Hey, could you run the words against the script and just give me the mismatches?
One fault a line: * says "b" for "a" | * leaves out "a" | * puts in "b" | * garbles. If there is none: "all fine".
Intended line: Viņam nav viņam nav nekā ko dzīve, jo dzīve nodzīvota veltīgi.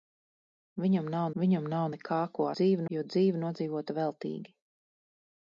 all fine